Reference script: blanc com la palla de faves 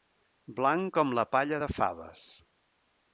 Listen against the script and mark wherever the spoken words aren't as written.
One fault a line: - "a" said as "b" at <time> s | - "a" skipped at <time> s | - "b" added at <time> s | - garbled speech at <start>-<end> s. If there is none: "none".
none